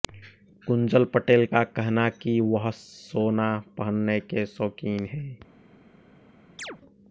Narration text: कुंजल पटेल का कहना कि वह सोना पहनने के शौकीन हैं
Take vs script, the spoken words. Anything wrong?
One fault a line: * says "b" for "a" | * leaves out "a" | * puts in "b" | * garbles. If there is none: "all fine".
all fine